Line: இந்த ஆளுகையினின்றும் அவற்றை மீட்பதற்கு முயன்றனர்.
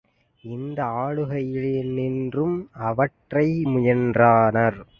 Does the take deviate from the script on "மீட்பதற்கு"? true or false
true